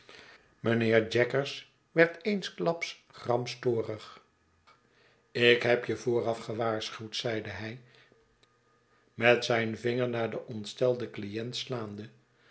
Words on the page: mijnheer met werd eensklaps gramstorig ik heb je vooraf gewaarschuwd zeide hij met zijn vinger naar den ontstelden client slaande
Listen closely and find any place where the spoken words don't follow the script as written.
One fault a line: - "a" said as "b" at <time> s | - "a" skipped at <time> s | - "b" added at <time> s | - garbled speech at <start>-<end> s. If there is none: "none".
- "met" said as "jaggers" at 1.1 s